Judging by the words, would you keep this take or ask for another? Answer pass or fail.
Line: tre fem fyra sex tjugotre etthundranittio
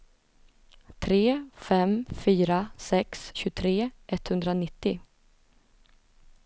pass